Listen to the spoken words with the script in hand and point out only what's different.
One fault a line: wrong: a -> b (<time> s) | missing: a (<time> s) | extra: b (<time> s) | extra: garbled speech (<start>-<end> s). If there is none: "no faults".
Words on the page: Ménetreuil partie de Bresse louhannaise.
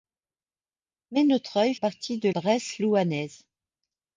no faults